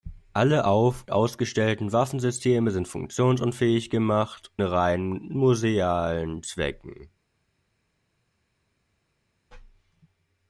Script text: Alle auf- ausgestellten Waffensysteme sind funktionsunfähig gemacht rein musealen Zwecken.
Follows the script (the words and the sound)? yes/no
yes